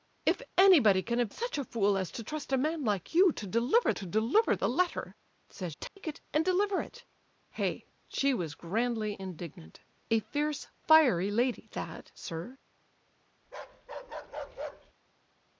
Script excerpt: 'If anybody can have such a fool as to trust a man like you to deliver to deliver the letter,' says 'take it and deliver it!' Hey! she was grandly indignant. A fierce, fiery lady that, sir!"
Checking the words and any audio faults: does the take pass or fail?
fail